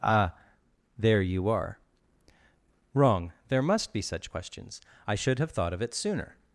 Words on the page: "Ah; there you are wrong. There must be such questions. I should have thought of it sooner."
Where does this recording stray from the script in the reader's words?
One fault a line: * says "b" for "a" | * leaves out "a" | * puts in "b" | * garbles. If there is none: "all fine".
all fine